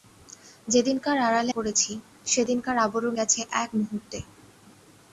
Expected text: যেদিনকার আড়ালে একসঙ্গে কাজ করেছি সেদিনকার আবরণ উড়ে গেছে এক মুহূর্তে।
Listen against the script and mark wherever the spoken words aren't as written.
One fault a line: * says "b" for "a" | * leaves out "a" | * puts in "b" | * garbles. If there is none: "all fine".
* leaves out "একসঙ্গে কাজ"
* leaves out "উড়ে"